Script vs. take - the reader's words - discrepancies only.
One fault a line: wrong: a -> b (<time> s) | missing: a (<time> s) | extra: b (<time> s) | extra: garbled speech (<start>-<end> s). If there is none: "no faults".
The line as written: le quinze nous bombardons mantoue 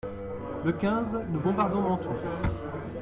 no faults